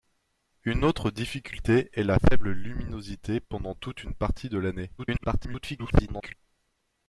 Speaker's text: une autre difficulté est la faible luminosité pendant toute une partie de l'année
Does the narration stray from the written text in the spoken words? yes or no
yes